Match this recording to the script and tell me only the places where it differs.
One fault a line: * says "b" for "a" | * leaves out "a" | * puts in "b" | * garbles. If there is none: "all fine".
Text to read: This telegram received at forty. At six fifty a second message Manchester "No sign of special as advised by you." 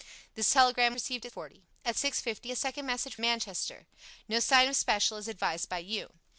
all fine